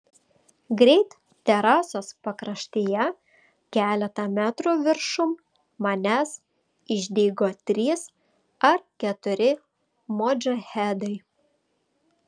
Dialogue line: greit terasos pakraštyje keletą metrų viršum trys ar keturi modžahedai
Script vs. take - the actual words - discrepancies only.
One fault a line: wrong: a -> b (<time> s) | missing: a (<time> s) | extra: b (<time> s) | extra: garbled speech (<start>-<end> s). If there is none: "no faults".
extra: manęs išdygo (5.9 s)